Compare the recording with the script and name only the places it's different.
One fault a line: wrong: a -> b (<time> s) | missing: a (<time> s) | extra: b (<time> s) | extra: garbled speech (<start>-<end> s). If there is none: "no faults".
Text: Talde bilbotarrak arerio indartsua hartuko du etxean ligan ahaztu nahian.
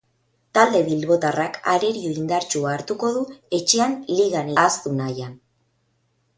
no faults